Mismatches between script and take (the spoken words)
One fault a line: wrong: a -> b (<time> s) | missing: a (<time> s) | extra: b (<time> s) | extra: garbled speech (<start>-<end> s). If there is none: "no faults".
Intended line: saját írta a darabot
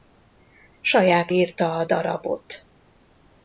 no faults